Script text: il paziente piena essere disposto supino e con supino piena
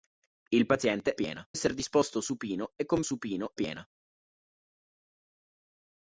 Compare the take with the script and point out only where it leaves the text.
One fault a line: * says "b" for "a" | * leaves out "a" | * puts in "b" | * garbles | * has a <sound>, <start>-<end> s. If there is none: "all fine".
all fine